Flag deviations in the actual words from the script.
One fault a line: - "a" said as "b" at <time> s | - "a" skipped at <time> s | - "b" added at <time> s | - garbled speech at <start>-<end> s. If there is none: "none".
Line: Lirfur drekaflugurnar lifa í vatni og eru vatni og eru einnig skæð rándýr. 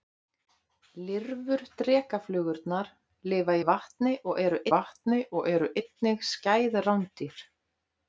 none